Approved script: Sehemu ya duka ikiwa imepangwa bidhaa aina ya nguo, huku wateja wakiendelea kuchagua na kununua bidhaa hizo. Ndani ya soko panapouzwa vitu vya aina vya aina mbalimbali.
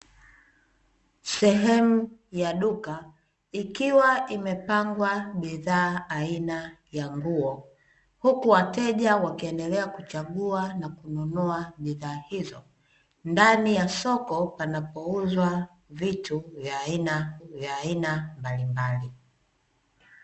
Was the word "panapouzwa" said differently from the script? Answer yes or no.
no